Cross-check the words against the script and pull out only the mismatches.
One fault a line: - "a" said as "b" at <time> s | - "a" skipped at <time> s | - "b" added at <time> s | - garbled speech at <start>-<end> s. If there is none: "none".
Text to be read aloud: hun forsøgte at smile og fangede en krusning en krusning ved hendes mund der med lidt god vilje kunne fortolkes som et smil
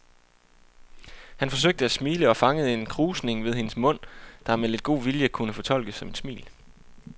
- "hun" said as "han" at 1.4 s
- "en krusning" skipped at 3.4 s